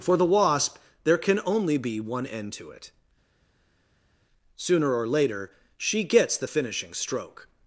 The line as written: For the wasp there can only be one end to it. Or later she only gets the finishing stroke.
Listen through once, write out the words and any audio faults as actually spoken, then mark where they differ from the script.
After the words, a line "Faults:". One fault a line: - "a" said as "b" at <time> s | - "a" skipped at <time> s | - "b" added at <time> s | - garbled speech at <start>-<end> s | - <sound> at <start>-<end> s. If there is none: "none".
For the wasp there can only be one end to it. Sooner or later she gets the finishing stroke.
Faults:
- "Sooner" added at 4.6 s
- "only" skipped at 6.0 s